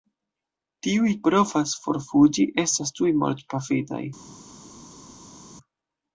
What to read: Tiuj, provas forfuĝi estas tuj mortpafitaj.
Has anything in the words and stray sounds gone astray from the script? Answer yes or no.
no